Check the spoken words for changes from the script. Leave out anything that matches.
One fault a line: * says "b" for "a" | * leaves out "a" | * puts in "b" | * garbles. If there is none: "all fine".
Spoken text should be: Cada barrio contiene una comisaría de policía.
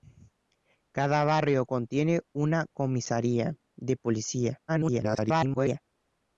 * garbles